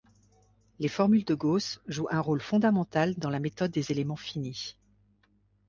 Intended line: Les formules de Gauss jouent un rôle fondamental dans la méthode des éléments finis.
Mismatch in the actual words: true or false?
false